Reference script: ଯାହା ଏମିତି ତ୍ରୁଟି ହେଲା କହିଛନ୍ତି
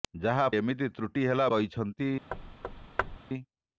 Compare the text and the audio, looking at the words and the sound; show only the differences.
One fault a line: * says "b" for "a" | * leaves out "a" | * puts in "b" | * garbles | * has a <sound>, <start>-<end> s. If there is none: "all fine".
* has a thud, 2.3-3.2 s